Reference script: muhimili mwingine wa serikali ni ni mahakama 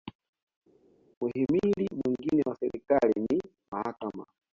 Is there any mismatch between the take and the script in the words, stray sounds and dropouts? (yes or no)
yes